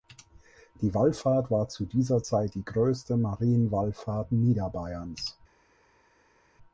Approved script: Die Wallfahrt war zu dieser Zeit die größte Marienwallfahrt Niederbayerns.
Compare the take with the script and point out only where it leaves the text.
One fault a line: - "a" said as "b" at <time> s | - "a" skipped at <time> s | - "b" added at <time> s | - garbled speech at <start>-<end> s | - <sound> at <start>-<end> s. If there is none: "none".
none